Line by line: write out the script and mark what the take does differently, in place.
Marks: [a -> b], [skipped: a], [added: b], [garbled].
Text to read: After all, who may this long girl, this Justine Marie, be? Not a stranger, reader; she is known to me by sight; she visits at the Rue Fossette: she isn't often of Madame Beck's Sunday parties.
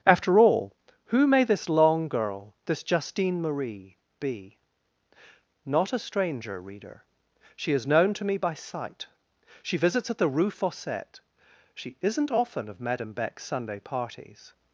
After all, who may this long girl, this Justine Marie, be? Not a stranger, reader; she is known to me by sight; she visits at the Rue Fossette: she isn't often of Madame Beck's Sunday parties.